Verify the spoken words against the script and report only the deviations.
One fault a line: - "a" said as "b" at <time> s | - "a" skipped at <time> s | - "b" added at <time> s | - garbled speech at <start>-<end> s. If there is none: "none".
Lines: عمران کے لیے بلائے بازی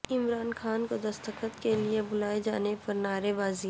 - "خان کو دستخط" added at 0.5 s
- "جانے پر نعرے" added at 2.4 s